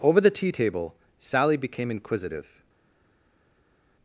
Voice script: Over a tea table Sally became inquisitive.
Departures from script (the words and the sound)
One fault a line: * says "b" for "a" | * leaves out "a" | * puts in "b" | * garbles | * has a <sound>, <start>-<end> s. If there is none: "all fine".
* says "the" for "a"